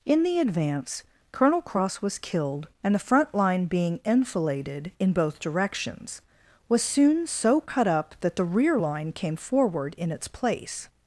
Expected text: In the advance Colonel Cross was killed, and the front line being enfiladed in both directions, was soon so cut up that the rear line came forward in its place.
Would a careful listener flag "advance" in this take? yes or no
no